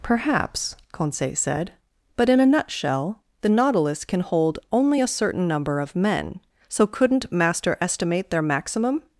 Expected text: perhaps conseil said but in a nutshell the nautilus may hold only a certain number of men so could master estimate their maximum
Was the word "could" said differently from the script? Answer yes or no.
yes